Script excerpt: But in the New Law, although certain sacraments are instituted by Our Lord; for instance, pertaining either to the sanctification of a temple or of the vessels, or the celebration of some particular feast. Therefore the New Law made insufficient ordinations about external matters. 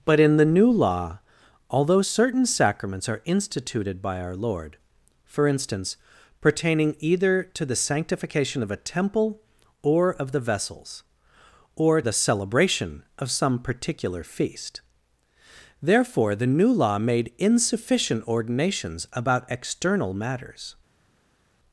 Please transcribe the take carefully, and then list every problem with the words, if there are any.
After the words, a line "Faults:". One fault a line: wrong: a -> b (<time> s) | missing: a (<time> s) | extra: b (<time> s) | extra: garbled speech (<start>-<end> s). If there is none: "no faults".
But in the New Law, although certain sacraments are instituted by Our Lord; for instance, pertaining either to the sanctification of a temple or of the vessels, or the celebration of some particular feast. Therefore the New Law made insufficient ordinations about external matters.
Faults:
no faults